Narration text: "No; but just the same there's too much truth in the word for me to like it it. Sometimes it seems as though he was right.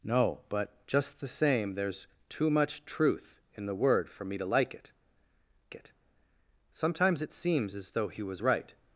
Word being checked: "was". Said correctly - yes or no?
yes